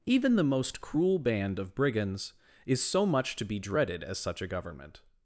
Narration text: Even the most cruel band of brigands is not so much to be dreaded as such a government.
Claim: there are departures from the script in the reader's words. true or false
true